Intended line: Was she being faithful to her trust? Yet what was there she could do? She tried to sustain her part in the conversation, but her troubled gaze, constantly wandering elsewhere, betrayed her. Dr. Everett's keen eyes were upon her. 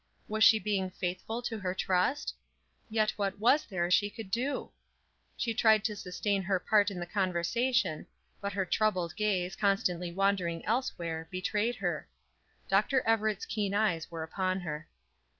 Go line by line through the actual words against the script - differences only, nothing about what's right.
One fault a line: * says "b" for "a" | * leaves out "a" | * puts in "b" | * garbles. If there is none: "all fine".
all fine